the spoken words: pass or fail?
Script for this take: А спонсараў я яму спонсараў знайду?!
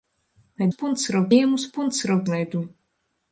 pass